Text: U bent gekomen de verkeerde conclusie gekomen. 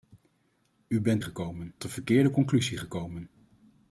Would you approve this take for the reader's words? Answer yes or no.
yes